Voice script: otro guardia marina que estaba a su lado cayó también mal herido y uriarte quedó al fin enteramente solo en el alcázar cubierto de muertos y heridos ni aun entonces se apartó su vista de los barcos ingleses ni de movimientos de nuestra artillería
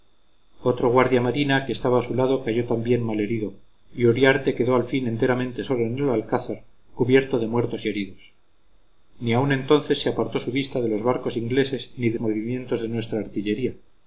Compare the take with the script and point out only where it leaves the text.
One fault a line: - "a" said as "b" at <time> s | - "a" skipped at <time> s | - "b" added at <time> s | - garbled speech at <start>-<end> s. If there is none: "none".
none